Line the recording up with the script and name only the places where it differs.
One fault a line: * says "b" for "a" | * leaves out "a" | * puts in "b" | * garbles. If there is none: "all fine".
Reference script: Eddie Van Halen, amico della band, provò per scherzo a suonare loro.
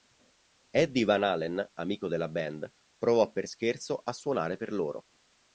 * puts in "per"